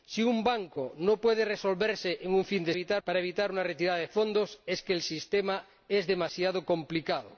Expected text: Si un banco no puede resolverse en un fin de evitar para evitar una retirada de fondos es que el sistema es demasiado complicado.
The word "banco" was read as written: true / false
true